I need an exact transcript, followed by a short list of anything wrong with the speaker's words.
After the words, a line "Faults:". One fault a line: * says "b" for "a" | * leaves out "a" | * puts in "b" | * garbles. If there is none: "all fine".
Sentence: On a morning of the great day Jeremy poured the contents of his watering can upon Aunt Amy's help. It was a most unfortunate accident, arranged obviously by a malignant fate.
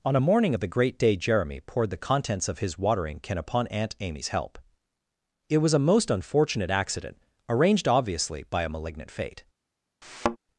On a morning of the great day Jeremy poured the contents of his watering can upon Aunt Amy's help. It was a most unfortunate accident, arranged obviously by a malignant fate.
Faults:
all fine